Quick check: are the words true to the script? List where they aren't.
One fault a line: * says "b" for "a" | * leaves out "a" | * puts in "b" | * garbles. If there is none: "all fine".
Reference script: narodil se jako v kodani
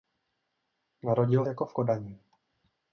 * leaves out "se"